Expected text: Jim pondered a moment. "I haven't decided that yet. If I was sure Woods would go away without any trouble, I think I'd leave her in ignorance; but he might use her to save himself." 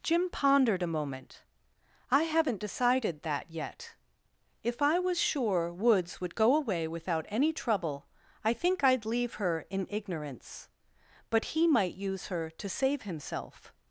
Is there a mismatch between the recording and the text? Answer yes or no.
no